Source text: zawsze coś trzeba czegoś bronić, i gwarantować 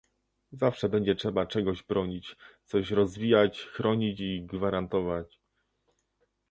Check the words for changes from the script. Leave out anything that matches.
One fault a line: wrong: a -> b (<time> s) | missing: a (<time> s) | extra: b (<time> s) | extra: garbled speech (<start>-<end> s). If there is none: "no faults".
wrong: coś -> będzie (0.9 s)
extra: coś rozwijać chronić (2.6 s)